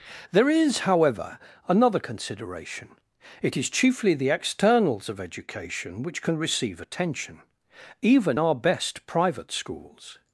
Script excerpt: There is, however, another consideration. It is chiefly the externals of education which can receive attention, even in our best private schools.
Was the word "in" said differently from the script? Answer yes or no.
yes